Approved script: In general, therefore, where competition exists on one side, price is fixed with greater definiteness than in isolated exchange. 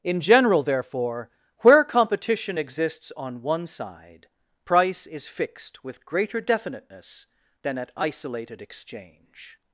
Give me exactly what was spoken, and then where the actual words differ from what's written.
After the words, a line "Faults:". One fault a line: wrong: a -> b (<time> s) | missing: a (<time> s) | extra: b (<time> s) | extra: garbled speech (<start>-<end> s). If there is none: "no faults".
In general, therefore, where competition exists on one side, price is fixed with greater definiteness than at isolated exchange.
Faults:
wrong: in -> at (7.8 s)